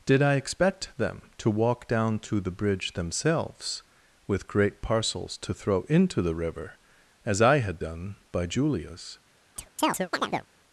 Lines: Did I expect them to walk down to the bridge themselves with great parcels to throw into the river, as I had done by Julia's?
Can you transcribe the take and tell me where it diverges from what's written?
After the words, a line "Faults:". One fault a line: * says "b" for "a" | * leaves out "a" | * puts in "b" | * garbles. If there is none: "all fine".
Did I expect them to walk down to the bridge themselves with great parcels to throw into the river, as I had done by Julia's?
Faults:
all fine